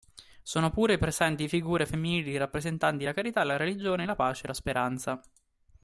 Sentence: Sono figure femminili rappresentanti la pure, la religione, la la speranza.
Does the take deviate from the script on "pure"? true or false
true